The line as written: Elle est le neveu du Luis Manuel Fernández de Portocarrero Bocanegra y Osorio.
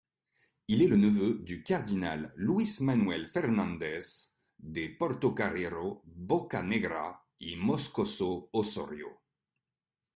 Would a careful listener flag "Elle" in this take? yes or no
yes